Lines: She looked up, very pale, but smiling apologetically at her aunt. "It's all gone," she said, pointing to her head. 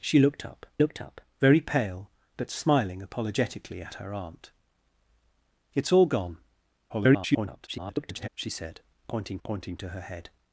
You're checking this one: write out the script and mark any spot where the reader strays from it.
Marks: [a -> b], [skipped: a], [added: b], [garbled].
She looked up, [added: looked up] very pale, but smiling apologetically at her aunt. "It's all gone," [garbled] she said, pointing [added: pointing] to her head.